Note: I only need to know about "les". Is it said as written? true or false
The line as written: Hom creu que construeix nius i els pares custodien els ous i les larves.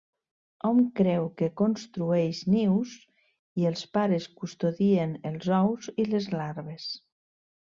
true